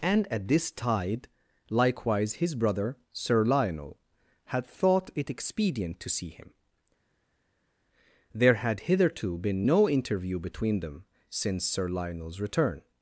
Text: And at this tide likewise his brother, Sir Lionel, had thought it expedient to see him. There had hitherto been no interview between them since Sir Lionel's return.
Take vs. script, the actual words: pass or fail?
pass